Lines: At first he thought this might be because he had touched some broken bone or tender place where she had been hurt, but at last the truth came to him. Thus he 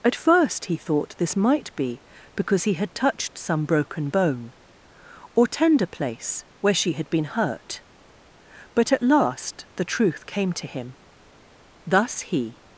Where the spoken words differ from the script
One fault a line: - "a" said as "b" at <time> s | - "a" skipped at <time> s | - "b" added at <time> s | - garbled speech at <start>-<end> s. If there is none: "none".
none